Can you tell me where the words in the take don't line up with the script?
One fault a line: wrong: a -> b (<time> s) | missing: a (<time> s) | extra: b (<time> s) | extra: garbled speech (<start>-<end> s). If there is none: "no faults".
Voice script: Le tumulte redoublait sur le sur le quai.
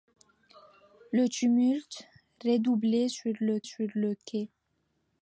no faults